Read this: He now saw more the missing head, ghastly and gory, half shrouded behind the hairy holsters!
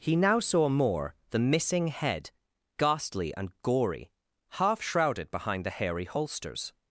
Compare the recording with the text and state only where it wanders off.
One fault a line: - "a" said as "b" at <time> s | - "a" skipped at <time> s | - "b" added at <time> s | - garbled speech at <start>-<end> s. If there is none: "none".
none